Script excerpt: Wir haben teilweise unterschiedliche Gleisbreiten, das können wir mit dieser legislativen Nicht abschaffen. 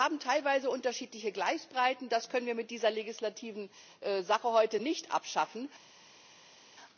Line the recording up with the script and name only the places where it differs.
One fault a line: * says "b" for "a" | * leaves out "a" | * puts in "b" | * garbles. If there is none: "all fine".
* puts in "Sache heute"